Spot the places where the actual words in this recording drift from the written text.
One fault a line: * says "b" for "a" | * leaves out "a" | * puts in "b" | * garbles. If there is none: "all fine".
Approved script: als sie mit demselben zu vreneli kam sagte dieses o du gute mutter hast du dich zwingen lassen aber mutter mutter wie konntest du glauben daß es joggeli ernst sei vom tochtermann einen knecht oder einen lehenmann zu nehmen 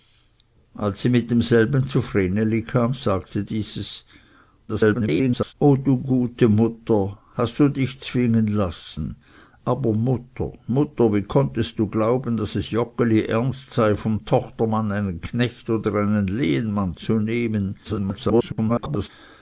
* garbles
* garbles